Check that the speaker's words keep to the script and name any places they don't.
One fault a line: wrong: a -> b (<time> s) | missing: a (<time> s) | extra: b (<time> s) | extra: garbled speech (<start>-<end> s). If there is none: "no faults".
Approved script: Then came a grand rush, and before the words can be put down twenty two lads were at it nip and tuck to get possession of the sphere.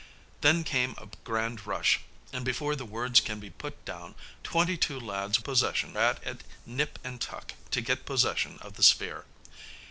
wrong: were -> possession (5.4 s)